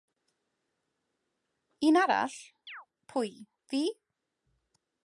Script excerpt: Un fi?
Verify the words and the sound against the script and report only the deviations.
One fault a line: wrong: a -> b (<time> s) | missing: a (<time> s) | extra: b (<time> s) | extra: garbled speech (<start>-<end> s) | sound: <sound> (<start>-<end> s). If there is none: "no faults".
extra: arall pwy (2.0 s)
sound: chirp (2.7-2.9 s)